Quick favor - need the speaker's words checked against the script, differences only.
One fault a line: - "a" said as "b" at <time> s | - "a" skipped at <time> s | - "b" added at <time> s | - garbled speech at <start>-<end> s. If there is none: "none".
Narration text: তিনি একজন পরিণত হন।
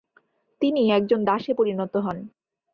- "দাসে" added at 1.2 s